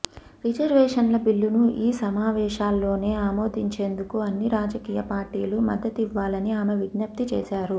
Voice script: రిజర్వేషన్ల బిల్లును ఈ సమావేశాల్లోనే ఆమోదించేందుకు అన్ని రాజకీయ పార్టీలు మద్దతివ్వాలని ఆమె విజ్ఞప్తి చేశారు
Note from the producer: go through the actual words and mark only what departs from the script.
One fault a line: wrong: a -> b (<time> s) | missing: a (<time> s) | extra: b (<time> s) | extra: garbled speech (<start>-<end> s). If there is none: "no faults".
no faults